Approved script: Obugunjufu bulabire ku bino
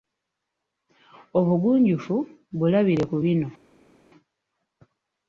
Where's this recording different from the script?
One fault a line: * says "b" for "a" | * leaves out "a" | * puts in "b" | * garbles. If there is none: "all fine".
all fine